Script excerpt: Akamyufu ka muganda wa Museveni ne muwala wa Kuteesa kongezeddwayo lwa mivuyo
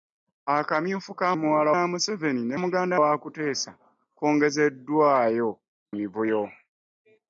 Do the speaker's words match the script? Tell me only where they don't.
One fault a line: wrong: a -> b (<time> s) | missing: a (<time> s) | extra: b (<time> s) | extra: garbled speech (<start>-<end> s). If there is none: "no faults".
wrong: muganda -> muwala (1.4 s)
wrong: muwala -> muganda (2.6 s)
missing: lwa (5.5 s)